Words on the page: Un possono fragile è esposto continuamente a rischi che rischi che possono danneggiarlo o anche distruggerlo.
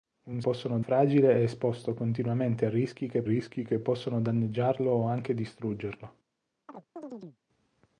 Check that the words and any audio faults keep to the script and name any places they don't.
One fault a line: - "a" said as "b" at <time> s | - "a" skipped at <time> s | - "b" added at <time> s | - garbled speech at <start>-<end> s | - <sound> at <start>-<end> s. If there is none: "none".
- chirp at 6.7-7.4 s